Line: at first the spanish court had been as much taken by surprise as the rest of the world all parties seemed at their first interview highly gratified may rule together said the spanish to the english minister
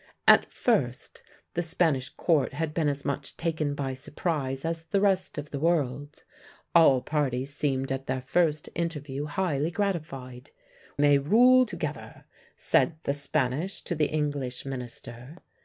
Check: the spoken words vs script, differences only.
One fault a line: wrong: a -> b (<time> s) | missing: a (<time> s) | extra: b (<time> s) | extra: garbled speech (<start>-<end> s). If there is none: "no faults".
no faults